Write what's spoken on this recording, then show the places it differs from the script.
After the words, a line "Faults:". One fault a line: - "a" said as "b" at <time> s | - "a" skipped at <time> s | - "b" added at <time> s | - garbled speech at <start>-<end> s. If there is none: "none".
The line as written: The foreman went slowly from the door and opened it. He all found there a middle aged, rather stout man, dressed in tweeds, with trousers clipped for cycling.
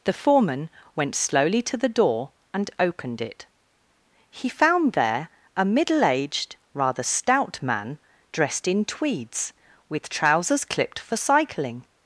The foreman went slowly to the door and opened it. He found there a middle aged, rather stout man, dressed in tweeds, with trousers clipped for cycling.
Faults:
- "from" said as "to" at 1.6 s
- "all" skipped at 4.5 s